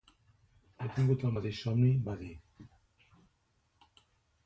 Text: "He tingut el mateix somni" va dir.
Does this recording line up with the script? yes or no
yes